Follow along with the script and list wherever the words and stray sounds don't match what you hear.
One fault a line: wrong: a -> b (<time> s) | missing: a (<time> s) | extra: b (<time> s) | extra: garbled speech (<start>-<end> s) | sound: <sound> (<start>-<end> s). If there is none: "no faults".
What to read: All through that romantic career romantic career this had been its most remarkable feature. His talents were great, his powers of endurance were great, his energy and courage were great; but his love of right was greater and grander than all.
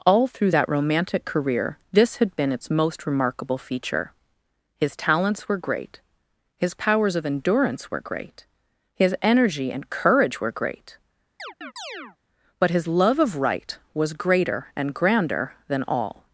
missing: romantic career (1.8 s)
sound: chirp (11.4-12.2 s)